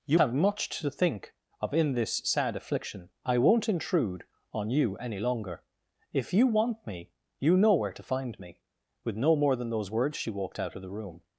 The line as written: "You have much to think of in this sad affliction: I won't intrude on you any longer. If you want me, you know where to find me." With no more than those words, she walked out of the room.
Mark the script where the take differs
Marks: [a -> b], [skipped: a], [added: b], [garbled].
"You have much to think of in this sad affliction: I won't intrude on you any longer. If you want me, you know where to find me." With no more than those words, she walked out of the room.